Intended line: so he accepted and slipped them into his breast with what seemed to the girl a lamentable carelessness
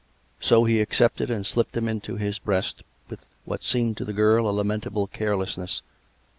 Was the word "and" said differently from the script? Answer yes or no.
no